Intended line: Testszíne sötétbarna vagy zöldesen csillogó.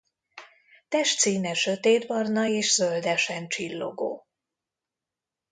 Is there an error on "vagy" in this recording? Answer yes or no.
yes